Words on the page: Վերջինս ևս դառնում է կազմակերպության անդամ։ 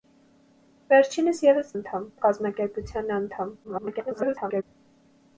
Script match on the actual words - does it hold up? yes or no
no